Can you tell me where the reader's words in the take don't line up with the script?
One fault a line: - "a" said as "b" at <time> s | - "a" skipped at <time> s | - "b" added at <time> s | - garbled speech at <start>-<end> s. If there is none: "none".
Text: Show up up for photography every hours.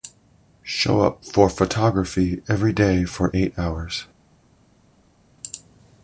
- "up" skipped at 1.2 s
- "day for eight" added at 2.7 s